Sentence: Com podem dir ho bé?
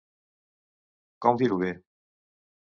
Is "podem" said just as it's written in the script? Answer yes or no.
no